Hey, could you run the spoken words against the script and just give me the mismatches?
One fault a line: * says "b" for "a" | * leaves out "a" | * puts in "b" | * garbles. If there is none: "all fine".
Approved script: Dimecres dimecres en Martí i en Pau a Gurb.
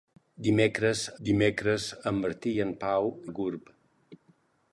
all fine